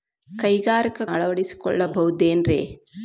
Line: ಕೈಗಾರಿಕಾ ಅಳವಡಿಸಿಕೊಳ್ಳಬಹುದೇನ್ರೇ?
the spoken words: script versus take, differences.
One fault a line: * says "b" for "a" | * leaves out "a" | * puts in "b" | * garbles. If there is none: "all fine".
all fine